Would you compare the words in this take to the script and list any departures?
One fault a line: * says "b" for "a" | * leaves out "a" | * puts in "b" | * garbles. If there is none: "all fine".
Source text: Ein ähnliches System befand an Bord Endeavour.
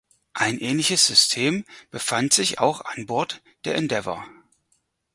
* puts in "sich auch"
* puts in "der"